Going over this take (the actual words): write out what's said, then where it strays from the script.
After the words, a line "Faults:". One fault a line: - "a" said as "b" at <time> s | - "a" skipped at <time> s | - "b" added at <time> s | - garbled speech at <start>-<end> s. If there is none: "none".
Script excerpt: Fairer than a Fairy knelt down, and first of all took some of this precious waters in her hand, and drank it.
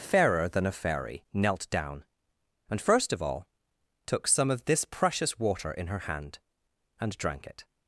Fairer than a Fairy knelt down, and first of all took some of this precious water in her hand, and drank it.
Faults:
- "waters" said as "water" at 5.4 s